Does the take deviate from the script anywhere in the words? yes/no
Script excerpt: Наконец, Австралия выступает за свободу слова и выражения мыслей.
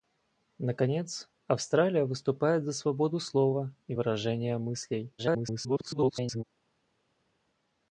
yes